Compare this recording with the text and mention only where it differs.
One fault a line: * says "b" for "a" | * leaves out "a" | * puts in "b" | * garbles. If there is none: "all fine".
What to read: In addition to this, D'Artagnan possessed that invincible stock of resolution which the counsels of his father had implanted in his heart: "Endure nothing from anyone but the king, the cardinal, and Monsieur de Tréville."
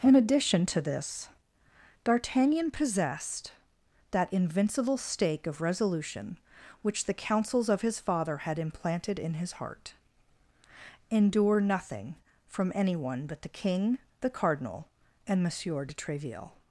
* says "stake" for "stock"